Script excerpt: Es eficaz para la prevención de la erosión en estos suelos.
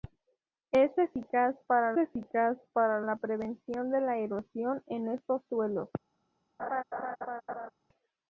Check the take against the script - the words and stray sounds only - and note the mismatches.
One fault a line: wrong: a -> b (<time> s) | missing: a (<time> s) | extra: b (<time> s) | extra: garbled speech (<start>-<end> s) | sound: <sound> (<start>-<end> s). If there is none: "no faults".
extra: eficaz para (2.0 s)
sound: laugh (6.6-7.7 s)